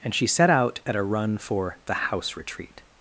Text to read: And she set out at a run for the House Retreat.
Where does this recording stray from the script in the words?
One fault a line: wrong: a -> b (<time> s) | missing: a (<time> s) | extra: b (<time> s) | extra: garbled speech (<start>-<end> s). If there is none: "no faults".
no faults